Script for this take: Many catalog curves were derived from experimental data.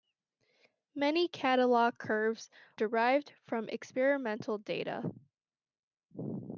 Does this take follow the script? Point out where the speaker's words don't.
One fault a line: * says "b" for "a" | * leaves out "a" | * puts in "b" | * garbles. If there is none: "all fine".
* leaves out "were"